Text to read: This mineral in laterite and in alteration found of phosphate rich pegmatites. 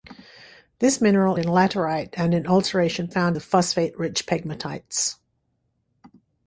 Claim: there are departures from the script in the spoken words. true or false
false